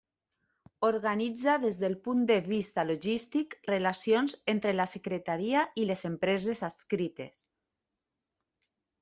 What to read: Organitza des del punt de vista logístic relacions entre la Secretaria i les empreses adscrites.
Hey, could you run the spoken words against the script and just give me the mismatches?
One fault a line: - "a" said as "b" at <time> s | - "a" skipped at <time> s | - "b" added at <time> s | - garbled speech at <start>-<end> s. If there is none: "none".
none